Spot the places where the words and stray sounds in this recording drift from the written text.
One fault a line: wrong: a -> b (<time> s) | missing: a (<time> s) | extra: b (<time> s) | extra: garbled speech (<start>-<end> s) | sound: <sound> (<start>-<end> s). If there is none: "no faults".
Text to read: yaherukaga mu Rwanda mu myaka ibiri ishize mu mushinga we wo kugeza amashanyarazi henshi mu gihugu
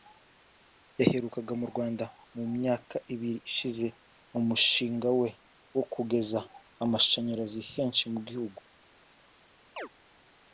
sound: chirp (9.8-9.9 s)